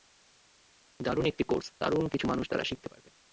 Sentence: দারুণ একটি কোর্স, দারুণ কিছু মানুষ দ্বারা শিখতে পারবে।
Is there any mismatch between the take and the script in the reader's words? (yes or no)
no